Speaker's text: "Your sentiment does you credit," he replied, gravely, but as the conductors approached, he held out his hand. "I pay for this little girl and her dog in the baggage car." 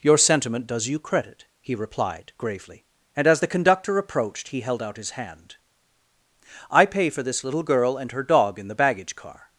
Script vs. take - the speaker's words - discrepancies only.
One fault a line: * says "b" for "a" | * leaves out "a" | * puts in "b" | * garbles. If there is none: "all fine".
* says "and" for "but"
* says "conductor" for "conductors"